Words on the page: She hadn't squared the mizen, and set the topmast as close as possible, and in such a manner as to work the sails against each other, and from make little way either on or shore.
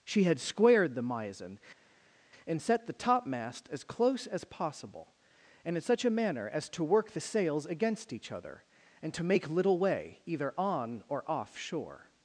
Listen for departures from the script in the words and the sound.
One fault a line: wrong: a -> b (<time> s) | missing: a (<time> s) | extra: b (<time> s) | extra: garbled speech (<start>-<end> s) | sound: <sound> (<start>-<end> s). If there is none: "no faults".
wrong: hadn't -> had (0.2 s)
wrong: from -> to (9.1 s)
extra: off (11.3 s)